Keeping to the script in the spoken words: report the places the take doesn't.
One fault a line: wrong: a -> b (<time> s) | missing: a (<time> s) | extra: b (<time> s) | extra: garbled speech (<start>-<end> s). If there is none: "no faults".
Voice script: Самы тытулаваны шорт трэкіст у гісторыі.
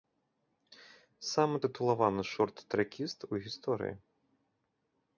no faults